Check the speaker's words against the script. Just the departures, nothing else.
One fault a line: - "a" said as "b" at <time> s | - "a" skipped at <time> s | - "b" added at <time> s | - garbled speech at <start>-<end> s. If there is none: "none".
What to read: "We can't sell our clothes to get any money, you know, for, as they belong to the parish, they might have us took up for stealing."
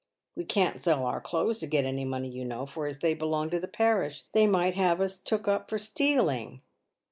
none